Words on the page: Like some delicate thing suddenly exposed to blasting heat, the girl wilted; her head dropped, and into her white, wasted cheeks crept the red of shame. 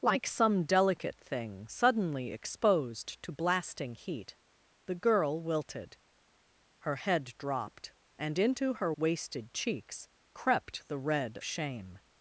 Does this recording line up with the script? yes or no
no